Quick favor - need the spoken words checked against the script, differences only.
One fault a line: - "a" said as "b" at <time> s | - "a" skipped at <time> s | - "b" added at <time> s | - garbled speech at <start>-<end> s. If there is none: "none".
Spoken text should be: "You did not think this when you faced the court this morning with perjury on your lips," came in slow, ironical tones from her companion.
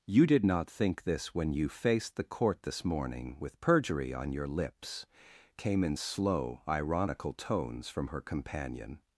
none